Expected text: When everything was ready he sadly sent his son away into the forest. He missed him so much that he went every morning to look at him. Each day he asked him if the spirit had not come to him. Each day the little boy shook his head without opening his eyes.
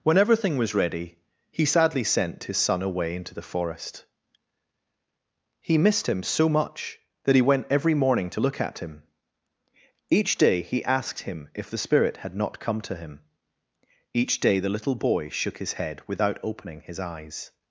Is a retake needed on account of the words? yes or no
no